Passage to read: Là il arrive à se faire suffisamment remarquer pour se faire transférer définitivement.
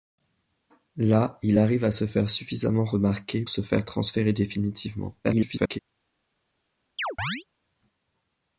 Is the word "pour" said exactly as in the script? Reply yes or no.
no